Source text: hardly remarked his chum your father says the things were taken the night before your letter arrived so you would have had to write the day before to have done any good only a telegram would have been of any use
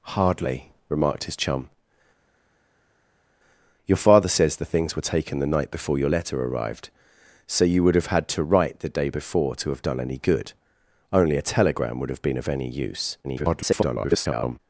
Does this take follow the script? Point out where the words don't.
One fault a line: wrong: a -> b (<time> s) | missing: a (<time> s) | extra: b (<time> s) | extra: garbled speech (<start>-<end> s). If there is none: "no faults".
extra: garbled speech (13.2-14.6 s)